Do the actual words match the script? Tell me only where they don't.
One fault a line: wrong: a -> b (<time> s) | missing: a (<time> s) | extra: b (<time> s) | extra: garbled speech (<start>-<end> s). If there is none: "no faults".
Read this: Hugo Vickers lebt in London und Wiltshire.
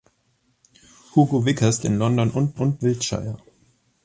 missing: lebt (1.8 s)
extra: und (2.5 s)